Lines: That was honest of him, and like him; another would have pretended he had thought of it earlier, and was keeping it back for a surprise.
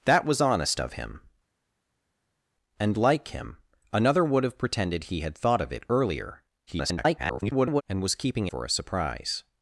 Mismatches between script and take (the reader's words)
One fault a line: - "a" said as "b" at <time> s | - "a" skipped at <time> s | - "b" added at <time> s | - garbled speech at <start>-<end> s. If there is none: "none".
- garbled speech at 6.7-7.8 s
- "it back" skipped at 8.5 s